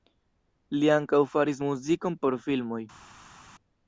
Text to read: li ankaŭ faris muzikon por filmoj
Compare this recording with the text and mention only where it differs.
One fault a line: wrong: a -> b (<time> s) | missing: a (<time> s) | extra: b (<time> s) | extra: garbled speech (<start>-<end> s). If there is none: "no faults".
no faults